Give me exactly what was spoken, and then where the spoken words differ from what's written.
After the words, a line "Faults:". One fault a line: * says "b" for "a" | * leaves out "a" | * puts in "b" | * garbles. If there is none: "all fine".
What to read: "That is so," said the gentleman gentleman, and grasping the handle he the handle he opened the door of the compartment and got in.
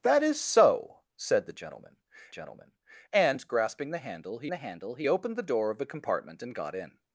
"That is so," said the gentleman gentleman, and grasping the handle he the handle he opened the door of the compartment and got in.
Faults:
all fine